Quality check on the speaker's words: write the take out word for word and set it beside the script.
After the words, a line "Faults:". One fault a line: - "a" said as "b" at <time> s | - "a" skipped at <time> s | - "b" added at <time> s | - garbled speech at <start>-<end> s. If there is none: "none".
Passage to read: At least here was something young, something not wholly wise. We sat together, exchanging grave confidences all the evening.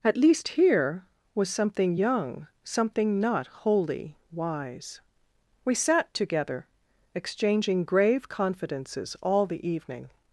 At least here was something young, something not wholly wise. We sat together, exchanging grave confidences all the evening.
Faults:
none